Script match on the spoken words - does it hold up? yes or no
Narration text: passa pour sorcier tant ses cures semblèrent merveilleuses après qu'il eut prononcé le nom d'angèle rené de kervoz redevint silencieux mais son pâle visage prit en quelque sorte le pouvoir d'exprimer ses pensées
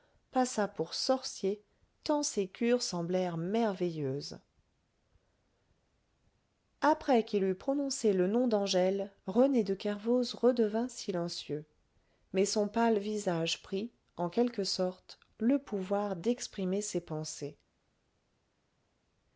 yes